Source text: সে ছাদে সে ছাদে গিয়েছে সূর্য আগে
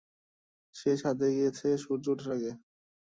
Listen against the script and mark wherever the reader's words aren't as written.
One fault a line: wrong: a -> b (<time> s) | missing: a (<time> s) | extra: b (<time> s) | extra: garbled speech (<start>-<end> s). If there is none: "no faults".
missing: সে ছাদে (1.3 s)
extra: ওঠার (2.1 s)